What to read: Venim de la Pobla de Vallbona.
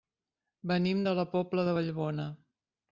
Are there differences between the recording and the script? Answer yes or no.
no